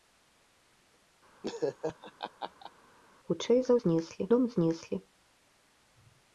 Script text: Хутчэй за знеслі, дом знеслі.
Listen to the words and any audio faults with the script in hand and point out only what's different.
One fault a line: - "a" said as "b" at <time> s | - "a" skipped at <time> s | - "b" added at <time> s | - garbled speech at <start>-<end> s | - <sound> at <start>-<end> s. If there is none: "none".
- laugh at 1.4-2.7 s